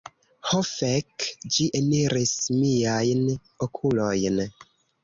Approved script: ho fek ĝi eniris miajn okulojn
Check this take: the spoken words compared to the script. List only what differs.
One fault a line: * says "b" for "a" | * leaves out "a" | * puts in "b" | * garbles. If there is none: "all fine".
all fine